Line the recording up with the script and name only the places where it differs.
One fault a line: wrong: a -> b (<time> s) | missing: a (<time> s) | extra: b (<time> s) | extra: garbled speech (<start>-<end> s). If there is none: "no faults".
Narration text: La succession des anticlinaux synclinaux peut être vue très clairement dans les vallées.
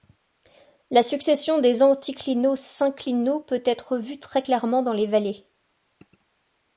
no faults